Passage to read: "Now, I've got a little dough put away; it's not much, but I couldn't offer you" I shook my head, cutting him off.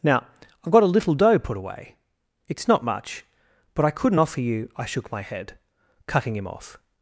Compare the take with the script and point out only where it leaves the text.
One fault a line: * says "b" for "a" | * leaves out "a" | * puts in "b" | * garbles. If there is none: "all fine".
all fine